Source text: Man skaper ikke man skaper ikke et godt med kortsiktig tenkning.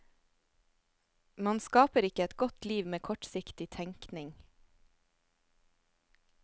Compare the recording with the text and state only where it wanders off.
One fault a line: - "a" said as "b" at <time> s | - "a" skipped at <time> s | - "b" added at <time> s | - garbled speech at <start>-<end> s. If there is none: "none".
- "man skaper ikke" skipped at 2.2 s
- "liv" added at 2.6 s